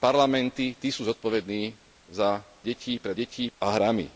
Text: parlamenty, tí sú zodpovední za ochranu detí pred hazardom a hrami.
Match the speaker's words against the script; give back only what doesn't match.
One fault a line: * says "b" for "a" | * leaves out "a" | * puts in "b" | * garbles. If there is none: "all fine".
* leaves out "ochranu"
* says "detí" for "hazardom"